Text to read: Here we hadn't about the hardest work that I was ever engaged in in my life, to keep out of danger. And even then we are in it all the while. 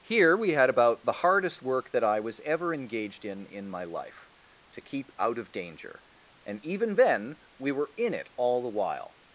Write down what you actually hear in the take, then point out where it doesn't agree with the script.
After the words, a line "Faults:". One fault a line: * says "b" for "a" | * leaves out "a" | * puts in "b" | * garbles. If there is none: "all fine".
Here we had about the hardest work that I was ever engaged in in my life, to keep out of danger. And even then we were in it all the while.
Faults:
* says "had" for "hadn't"
* says "were" for "are"